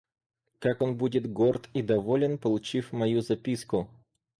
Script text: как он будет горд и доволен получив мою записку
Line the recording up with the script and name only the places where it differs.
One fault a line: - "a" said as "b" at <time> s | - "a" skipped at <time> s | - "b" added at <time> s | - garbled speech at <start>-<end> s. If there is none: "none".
none